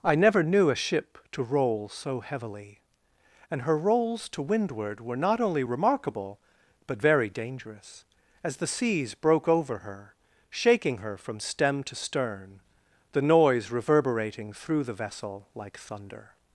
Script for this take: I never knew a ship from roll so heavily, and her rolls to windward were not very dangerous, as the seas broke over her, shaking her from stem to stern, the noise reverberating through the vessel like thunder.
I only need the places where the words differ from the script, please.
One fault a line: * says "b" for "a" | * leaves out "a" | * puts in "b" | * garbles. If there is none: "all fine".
* says "to" for "from"
* puts in "only remarkable but"